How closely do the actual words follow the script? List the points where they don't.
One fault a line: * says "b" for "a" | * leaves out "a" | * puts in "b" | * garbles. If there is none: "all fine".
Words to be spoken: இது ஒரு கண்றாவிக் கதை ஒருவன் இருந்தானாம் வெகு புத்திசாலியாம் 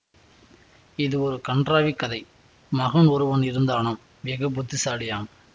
* puts in "மகன்"